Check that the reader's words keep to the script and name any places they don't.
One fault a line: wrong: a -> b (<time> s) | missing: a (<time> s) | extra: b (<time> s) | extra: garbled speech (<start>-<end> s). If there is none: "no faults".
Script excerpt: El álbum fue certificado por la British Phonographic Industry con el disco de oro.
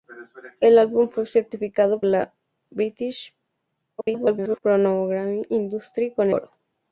missing: por (2.0 s)
extra: garbled speech (4.0-4.6 s)
missing: el disco de (6.3 s)